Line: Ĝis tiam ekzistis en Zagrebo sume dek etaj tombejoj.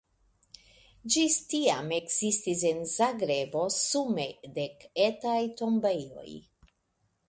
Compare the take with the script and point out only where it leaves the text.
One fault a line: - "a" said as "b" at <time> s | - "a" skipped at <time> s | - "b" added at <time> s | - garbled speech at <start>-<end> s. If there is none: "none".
none